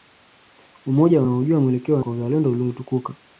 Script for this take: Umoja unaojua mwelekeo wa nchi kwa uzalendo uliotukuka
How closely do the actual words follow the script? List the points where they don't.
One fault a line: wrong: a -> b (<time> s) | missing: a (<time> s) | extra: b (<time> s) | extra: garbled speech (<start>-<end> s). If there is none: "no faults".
missing: nchi (2.1 s)